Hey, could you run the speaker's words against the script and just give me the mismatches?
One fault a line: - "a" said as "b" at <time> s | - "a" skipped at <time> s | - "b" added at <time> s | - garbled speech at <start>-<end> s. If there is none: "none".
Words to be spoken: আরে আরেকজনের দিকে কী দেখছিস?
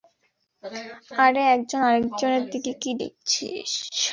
- "একজন" added at 1.6 s